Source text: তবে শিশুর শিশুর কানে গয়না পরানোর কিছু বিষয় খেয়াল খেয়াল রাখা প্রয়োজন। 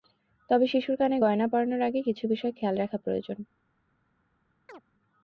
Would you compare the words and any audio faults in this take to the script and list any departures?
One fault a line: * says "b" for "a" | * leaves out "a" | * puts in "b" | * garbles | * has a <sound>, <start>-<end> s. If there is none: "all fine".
* leaves out "শিশুর"
* puts in "আগে"
* leaves out "খেয়াল"
* has a chirp, 4.7-4.8 s